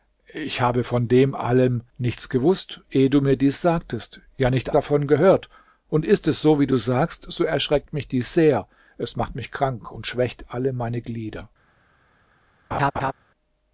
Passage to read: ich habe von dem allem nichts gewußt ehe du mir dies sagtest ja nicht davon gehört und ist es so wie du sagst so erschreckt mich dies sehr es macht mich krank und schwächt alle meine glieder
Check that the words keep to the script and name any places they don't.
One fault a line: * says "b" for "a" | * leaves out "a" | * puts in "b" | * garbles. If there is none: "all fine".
all fine